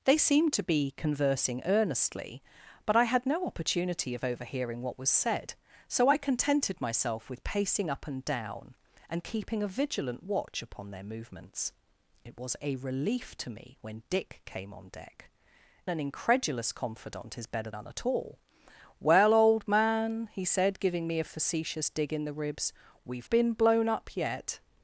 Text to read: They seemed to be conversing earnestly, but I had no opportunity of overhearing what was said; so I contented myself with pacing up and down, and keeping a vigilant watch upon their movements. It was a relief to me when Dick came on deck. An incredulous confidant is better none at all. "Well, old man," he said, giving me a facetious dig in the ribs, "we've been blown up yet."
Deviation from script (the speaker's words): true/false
false